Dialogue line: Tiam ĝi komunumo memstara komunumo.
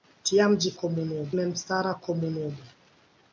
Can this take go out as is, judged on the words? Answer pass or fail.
pass